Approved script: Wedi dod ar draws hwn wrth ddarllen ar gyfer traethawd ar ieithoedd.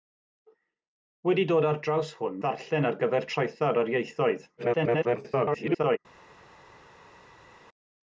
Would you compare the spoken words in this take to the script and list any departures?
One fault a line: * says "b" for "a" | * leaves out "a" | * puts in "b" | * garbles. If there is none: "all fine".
* leaves out "wrth"
* garbles